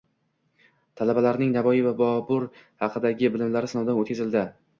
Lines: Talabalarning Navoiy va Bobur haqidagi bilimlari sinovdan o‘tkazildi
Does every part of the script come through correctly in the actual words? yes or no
yes